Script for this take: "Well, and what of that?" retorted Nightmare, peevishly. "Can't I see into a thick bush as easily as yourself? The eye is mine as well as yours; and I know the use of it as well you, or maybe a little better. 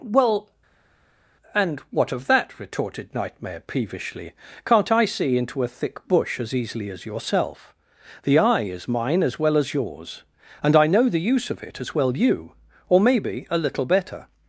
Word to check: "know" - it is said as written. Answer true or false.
true